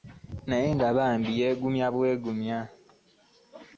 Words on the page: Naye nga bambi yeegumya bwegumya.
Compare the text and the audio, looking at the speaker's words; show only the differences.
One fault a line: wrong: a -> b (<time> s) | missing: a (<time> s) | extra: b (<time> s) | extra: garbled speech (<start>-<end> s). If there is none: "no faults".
no faults